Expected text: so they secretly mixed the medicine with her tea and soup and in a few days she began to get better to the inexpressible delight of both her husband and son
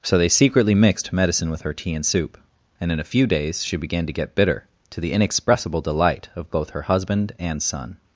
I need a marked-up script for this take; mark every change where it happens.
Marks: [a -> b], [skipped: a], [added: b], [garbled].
so they secretly mixed [skipped: the] medicine with her tea and soup and in a few days she began to get [better -> bitter] to the inexpressible delight of both her husband and son